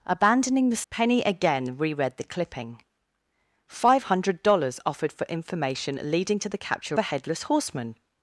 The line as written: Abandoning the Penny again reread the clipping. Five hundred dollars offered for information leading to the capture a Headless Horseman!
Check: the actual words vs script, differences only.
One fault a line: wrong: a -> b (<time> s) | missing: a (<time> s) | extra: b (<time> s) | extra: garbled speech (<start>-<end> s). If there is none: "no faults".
no faults